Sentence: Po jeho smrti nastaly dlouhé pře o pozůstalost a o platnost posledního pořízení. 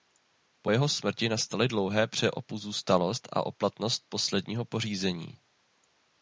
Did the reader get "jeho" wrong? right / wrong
right